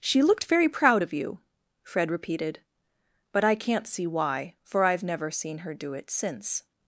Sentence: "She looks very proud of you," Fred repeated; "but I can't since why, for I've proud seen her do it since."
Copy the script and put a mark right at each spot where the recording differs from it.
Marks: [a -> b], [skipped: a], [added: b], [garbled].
"She [looks -> looked] very proud of you," Fred repeated; "but I can't [since -> see] why, for I've [proud -> never] seen her do it since."